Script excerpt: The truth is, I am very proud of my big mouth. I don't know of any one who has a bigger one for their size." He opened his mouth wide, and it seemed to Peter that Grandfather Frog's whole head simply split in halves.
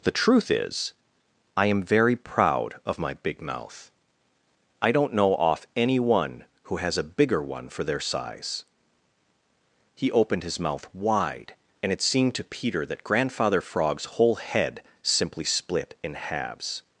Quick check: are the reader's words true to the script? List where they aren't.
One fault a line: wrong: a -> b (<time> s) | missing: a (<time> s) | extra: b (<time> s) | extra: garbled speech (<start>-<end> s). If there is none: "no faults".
wrong: of -> off (5.3 s)